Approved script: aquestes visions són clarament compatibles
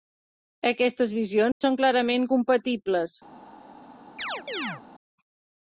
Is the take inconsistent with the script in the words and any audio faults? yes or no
yes